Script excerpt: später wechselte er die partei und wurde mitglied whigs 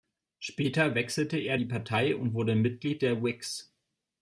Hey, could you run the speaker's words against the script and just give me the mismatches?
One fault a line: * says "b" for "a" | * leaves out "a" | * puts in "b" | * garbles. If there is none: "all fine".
* puts in "der"